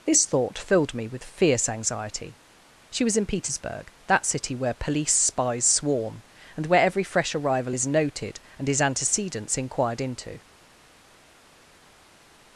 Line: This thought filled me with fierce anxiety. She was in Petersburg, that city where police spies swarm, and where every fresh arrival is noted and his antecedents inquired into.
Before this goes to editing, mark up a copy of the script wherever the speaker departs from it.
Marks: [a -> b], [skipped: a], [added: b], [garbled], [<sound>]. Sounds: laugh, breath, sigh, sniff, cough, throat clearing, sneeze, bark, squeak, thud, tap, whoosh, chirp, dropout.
This thought filled me with fierce anxiety. She was in Petersburg, that city where police spies swarm, and where every fresh arrival is noted and his antecedents inquired into.